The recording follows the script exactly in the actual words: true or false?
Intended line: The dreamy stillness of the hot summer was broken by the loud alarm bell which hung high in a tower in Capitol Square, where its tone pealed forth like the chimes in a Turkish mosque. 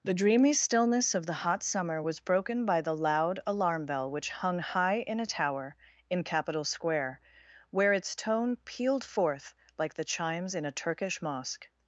true